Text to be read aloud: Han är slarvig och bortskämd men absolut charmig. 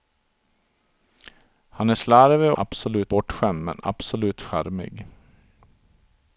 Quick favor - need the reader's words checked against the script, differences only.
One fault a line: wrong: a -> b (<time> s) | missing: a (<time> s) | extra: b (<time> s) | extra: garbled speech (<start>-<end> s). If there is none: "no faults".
wrong: och -> absolut (2.6 s)